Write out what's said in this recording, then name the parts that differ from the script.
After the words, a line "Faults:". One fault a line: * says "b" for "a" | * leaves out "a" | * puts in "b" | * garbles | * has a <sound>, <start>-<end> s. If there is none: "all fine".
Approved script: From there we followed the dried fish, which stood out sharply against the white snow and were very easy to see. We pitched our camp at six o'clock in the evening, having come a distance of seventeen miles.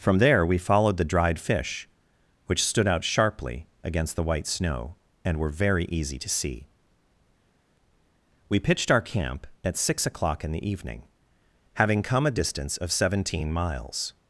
From there we followed the dried fish, which stood out sharply against the white snow and were very easy to see. We pitched our camp at six o'clock in the evening, having come a distance of seventeen miles.
Faults:
all fine